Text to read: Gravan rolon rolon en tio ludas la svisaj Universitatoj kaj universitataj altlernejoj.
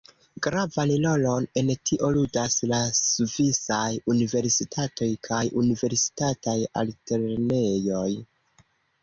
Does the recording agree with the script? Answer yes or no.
no